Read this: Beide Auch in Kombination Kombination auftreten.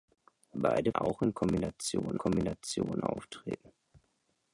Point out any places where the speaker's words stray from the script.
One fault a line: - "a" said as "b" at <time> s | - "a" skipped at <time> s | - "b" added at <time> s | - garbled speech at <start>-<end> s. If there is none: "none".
none